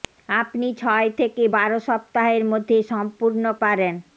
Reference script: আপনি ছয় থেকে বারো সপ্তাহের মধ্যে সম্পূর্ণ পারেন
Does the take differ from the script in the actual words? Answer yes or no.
no